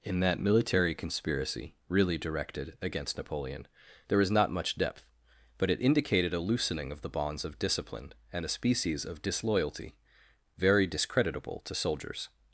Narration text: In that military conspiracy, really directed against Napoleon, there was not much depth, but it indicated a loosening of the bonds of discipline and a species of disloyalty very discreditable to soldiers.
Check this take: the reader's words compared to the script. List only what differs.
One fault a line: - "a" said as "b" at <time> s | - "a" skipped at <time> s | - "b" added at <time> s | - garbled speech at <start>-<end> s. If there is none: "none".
- "was" said as "is" at 4.2 s